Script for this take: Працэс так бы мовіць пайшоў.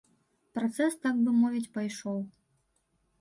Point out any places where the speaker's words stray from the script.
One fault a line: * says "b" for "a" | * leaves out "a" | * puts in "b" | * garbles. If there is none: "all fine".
all fine